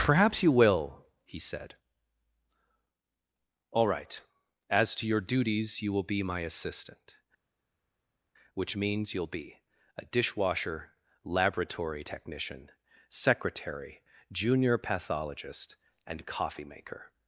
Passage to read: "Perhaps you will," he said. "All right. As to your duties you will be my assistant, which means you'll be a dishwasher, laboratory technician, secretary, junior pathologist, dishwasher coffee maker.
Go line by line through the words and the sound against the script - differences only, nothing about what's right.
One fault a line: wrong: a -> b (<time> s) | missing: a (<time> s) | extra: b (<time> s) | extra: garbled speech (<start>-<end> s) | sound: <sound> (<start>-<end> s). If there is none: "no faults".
wrong: dishwasher -> and (16.0 s)